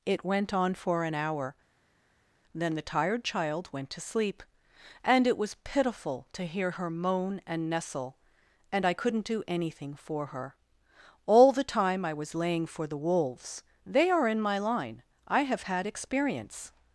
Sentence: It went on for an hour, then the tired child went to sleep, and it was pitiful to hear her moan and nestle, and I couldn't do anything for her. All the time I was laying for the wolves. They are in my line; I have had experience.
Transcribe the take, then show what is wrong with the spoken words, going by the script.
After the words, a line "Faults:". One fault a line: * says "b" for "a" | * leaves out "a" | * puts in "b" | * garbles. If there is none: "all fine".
It went on for an hour, then the tired child went to sleep, and it was pitiful to hear her moan and nestle, and I couldn't do anything for her. All the time I was laying for the wolves. They are in my line; I have had experience.
Faults:
all fine